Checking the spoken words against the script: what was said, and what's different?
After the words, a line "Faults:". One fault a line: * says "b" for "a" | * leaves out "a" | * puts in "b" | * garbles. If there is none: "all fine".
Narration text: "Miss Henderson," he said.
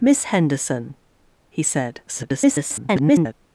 "Miss Henderson," he said. [garbled]
Faults:
* garbles